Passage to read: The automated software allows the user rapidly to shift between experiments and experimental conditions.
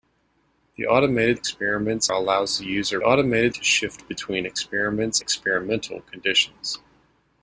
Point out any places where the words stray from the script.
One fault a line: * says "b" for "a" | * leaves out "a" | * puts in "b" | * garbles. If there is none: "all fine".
* says "experiments" for "software"
* says "automated" for "rapidly"
* leaves out "and"